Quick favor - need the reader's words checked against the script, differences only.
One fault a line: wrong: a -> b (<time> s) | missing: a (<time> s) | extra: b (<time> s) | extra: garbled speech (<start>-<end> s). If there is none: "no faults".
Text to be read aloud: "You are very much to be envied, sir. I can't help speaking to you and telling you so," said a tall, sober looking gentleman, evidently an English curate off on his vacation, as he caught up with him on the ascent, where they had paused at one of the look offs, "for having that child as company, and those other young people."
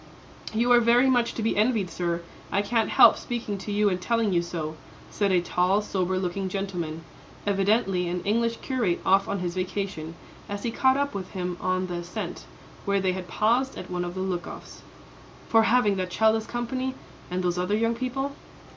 no faults